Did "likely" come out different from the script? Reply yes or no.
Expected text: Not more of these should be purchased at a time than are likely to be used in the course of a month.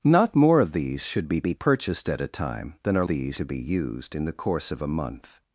yes